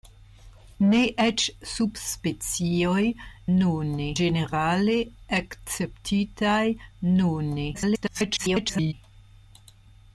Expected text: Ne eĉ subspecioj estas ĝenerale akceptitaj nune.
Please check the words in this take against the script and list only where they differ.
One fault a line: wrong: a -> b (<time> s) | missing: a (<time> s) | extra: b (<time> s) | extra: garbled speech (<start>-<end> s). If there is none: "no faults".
wrong: estas -> nune (3.6 s)
extra: garbled speech (7.7-8.9 s)